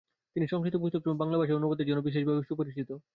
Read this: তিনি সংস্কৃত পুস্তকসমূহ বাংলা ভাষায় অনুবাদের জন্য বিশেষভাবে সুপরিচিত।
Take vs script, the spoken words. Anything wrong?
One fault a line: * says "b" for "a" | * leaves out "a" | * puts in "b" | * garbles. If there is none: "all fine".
all fine